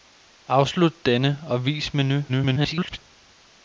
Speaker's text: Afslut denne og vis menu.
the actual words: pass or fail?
fail